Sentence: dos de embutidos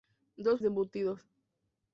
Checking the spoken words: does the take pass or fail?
pass